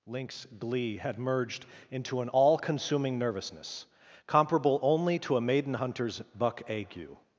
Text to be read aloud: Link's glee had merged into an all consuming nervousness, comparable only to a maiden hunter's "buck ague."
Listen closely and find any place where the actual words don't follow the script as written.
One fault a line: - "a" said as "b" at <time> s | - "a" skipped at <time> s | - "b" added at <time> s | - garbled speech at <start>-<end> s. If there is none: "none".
none